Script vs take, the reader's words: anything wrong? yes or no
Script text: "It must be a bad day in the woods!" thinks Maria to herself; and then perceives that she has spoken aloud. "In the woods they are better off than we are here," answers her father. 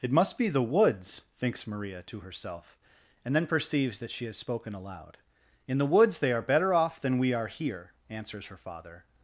yes